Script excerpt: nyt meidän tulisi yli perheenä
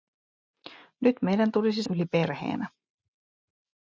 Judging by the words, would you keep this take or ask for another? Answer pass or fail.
pass